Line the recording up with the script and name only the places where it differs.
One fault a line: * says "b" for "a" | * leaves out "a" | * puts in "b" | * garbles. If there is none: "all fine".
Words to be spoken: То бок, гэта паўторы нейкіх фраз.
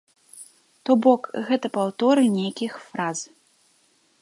all fine